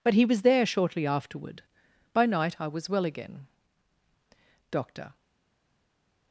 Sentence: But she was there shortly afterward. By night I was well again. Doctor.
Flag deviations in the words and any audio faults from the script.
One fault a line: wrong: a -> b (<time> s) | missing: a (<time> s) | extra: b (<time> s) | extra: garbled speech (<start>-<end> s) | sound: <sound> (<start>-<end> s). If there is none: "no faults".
wrong: she -> he (0.1 s)